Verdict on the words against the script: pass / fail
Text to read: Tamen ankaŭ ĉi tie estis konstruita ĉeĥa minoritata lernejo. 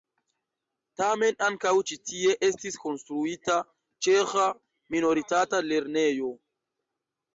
pass